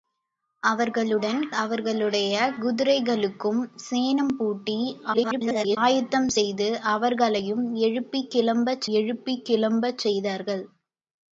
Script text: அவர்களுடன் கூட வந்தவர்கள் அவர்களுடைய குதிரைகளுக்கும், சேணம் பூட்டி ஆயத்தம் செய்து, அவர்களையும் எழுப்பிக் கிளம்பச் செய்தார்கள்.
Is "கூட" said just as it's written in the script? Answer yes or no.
no